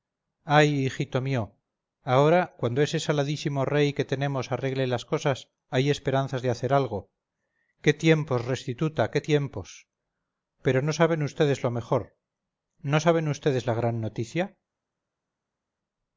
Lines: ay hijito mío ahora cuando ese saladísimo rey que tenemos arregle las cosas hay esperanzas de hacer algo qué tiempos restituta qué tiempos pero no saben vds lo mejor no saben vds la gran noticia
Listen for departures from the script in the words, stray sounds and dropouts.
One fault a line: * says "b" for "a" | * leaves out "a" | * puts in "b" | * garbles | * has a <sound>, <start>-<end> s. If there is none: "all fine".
all fine